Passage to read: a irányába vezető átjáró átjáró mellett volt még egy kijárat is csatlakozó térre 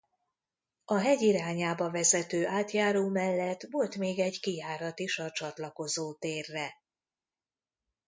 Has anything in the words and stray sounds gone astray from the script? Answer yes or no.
yes